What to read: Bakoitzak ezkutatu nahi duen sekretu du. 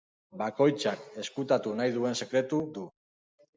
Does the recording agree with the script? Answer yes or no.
yes